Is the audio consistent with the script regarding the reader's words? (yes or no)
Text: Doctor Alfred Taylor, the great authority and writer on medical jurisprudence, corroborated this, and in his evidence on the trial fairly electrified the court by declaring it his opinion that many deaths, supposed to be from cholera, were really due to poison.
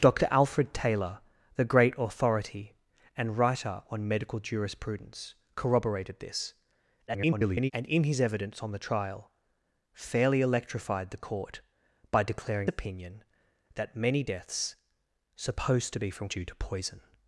no